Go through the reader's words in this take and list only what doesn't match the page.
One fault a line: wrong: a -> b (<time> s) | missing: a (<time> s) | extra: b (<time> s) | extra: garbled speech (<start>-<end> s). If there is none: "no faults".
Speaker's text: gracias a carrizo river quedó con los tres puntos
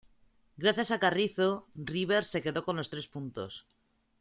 extra: se (2.2 s)